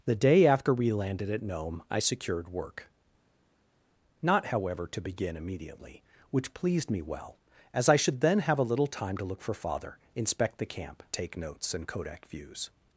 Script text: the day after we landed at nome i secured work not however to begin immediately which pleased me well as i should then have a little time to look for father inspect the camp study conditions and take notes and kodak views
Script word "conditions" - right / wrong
wrong